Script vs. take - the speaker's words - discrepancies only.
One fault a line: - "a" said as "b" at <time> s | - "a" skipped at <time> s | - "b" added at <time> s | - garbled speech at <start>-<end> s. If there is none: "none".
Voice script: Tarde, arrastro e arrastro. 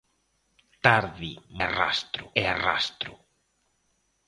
none